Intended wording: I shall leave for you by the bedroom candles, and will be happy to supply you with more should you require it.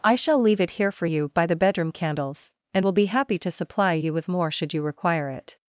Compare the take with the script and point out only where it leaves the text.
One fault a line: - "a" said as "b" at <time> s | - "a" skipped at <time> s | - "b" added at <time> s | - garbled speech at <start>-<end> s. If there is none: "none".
- "it here" added at 0.6 s